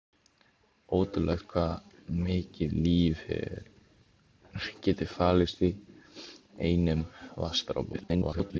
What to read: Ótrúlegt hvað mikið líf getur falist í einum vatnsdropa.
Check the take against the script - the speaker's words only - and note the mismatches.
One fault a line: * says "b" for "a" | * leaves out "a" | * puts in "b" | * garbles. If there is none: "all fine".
* garbles